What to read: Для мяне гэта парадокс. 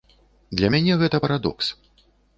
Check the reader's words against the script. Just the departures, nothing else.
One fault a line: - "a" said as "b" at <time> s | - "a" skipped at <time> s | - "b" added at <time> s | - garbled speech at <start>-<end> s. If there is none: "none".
none